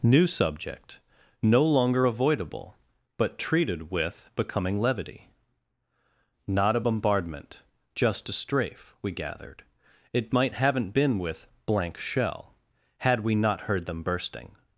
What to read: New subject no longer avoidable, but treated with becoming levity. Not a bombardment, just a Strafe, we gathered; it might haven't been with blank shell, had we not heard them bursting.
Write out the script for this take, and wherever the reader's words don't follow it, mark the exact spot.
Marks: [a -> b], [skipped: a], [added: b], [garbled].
New subject no longer avoidable, but treated with becoming levity. Not a bombardment, just a Strafe, we gathered; it might haven't been with blank shell, had we not heard them bursting.